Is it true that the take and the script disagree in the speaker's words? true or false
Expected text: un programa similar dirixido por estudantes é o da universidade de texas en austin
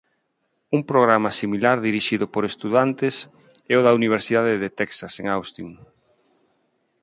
false